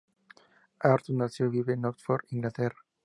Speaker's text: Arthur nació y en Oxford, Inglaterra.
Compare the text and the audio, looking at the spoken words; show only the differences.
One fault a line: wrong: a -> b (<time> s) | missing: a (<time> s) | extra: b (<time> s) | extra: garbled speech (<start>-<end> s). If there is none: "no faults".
extra: vive (1.5 s)